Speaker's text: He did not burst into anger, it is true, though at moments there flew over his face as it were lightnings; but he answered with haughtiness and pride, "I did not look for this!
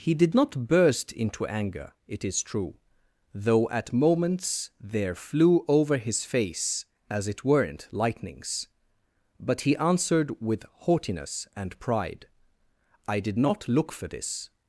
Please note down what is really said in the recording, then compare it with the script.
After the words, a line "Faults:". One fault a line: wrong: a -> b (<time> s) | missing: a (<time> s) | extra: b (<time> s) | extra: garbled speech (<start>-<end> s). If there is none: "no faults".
He did not burst into anger, it is true, though at moments there flew over his face as it weren't lightnings; but he answered with haughtiness and pride, "I did not look for this!
Faults:
wrong: were -> weren't (7.5 s)